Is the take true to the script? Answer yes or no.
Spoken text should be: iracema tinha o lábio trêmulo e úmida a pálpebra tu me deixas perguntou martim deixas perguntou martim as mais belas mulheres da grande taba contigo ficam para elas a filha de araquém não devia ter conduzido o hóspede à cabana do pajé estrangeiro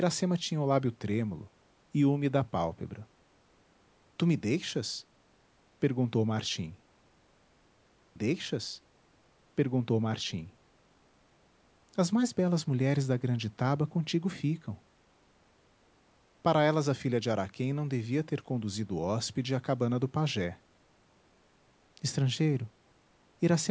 yes